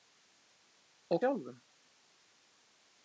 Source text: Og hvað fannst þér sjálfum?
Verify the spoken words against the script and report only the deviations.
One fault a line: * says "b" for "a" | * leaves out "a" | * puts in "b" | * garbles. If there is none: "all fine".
* leaves out "hvað fannst þér"